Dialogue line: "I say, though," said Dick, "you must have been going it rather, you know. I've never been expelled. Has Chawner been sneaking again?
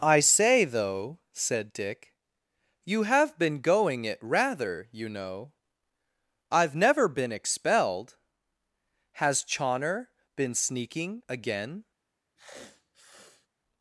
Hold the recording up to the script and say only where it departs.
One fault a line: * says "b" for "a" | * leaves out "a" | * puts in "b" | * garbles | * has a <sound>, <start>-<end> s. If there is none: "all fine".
* leaves out "must"
* has a sniff, 12.4-13.5 s